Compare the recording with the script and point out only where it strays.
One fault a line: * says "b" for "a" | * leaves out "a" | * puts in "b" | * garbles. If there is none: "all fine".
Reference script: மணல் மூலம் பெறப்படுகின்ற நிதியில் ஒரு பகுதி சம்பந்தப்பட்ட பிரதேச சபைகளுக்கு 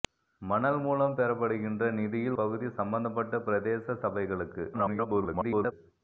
* leaves out "ஒரு"
* garbles